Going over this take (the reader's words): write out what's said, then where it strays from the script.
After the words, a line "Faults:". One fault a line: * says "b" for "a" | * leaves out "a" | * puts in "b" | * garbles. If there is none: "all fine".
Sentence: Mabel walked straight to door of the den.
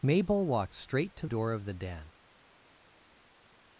Mabel walked straight to door of the den.
Faults:
all fine